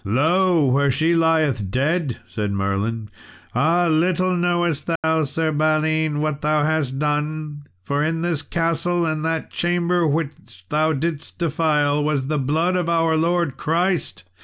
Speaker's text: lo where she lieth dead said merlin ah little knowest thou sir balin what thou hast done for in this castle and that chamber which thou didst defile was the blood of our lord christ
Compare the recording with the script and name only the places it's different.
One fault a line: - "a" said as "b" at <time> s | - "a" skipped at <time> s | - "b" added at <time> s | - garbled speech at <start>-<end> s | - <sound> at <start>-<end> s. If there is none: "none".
- dropout at 5.0-5.0 s